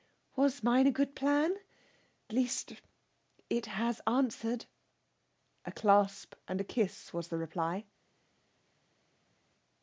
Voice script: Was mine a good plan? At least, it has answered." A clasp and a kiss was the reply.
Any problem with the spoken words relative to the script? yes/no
yes